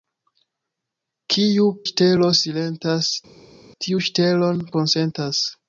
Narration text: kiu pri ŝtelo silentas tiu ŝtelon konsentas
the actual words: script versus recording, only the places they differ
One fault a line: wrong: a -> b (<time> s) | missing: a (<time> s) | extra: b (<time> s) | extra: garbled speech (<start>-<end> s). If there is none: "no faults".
missing: pri (1.7 s)